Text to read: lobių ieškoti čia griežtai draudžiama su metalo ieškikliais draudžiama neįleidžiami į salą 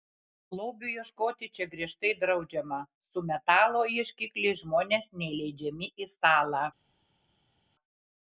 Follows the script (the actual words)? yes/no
no